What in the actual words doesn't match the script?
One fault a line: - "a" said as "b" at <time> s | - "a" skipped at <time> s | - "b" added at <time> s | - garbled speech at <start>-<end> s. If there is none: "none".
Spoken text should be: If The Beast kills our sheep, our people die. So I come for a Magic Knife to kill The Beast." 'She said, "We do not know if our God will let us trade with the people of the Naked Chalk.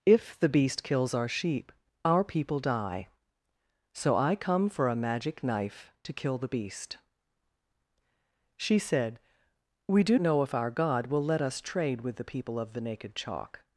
- "not" skipped at 10.2 s